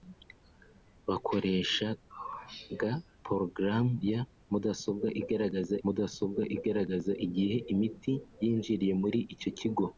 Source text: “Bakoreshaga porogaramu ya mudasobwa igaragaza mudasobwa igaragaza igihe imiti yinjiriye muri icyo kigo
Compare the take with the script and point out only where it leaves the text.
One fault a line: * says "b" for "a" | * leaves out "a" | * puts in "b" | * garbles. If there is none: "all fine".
all fine